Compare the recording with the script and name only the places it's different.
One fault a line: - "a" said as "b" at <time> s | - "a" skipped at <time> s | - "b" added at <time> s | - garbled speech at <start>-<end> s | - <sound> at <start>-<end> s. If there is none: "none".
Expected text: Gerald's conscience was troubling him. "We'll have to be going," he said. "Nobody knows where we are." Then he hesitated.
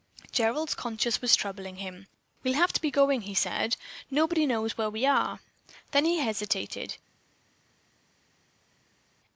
none